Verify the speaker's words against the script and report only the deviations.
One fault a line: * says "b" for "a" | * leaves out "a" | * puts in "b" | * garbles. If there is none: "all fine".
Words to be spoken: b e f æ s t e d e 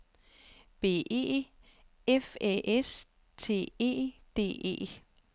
all fine